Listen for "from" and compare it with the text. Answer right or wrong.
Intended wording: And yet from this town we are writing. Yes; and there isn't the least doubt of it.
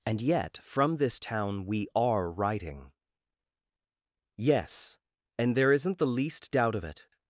right